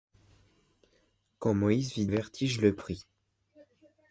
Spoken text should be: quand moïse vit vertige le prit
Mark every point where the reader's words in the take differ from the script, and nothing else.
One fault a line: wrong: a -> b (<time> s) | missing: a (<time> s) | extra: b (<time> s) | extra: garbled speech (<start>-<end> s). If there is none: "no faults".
no faults